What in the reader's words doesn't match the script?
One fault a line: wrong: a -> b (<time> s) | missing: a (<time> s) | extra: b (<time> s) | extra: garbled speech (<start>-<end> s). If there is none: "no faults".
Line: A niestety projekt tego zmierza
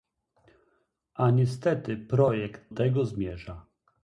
no faults